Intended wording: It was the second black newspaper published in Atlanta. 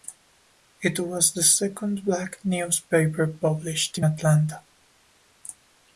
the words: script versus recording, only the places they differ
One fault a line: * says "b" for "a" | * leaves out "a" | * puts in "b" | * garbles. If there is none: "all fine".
all fine